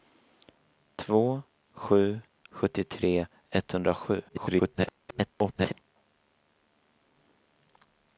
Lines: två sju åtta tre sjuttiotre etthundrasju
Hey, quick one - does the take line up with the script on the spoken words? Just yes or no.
no